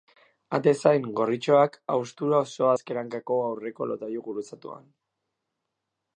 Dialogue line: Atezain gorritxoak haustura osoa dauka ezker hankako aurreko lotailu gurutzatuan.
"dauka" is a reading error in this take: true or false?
true